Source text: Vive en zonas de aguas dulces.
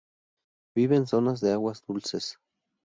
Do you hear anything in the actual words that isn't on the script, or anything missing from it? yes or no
no